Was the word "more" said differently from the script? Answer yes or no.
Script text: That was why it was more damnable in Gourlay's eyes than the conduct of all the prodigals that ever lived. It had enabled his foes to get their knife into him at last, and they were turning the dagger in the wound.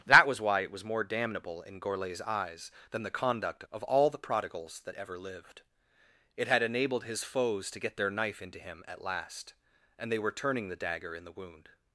no